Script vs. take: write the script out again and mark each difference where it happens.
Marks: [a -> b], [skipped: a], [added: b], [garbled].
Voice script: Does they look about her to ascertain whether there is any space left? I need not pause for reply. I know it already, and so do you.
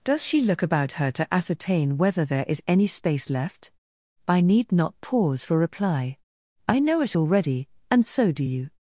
Does [they -> she] look about her to ascertain whether there is any space left? I need not pause for reply. I know it already, and so do you.